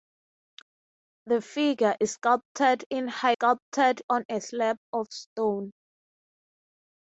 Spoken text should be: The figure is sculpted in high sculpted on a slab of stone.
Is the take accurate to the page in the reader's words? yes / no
yes